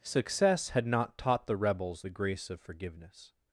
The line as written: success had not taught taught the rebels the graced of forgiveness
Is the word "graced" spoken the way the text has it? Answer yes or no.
no